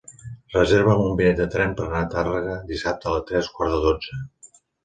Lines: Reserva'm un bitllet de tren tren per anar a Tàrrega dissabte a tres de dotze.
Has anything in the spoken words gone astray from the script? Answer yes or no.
yes